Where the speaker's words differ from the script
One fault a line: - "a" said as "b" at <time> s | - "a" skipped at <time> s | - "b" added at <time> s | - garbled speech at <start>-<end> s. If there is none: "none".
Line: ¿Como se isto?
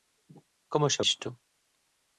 none